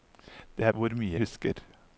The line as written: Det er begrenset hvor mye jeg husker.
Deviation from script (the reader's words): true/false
true